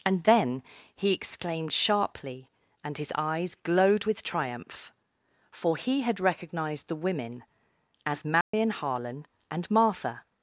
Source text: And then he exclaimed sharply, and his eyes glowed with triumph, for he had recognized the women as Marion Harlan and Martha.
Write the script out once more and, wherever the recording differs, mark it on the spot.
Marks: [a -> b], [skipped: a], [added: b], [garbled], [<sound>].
And then he exclaimed sharply, and his eyes glowed with triumph, for he had recognized the women as Marion [dropout] Harlan and Martha.